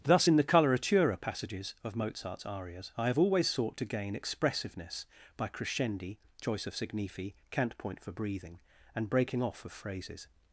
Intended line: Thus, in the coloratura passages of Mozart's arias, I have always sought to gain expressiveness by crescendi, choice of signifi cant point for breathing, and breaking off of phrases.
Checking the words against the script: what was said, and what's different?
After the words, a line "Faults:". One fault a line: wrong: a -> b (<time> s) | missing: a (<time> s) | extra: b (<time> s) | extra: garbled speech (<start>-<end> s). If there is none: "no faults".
Thus, in the coloratura passages of Mozart's arias, I have always sought to gain expressiveness by crescendi, choice of signifi cant point for breathing, and breaking off of phrases.
Faults:
no faults